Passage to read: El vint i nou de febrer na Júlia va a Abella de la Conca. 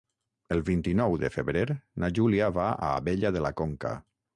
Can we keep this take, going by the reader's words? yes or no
yes